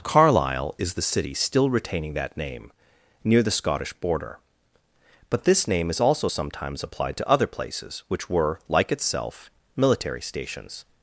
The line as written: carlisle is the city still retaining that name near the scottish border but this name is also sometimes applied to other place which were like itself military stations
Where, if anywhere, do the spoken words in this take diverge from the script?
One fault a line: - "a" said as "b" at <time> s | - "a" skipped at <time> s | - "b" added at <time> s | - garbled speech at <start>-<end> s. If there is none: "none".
- "place" said as "places" at 7.5 s